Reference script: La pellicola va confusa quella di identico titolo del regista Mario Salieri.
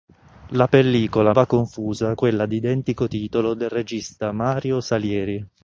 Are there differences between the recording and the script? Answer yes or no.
no